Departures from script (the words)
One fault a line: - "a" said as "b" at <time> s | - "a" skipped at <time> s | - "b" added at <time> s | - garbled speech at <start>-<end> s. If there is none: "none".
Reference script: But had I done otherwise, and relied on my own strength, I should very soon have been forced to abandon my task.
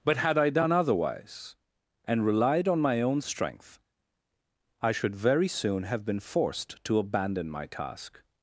none